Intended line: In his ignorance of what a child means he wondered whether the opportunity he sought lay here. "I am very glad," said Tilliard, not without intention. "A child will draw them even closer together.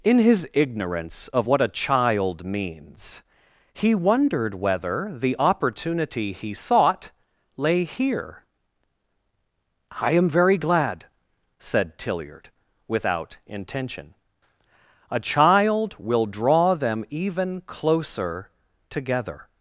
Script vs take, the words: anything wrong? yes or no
yes